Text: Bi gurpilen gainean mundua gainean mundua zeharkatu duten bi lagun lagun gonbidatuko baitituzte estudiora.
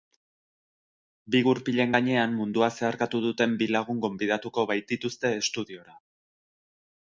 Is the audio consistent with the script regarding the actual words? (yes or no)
no